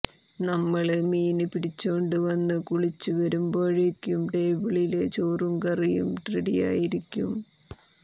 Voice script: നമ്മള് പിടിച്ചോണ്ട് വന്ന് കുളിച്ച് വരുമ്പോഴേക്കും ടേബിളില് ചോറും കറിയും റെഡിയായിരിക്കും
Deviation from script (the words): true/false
true